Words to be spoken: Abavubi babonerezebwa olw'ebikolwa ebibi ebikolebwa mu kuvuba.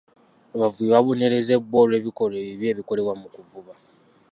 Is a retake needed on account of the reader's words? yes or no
no